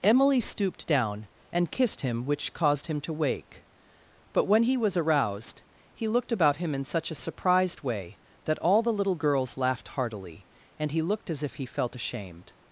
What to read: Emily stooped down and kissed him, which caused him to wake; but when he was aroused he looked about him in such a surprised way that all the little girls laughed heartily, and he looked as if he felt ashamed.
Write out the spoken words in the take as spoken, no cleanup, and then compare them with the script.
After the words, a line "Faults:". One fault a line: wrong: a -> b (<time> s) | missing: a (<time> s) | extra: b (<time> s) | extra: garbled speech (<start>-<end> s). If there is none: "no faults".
Emily stooped down and kissed him, which caused him to wake; but when he was aroused he looked about him in such a surprised way that all the little girls laughed heartily, and he looked as if he felt ashamed.
Faults:
no faults